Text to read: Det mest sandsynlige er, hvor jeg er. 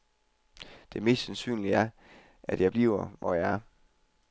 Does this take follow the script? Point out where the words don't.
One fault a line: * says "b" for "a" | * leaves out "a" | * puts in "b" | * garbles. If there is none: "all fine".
* puts in "at jeg bliver"